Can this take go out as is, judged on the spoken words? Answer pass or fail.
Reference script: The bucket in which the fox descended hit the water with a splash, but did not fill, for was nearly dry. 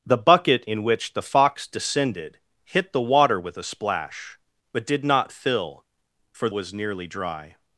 pass